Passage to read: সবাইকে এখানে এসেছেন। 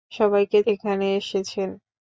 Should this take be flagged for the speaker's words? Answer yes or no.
no